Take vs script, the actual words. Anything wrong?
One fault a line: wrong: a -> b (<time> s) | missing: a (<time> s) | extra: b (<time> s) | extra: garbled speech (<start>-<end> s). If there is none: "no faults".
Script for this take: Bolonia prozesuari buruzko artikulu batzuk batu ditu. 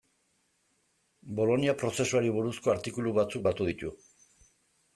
no faults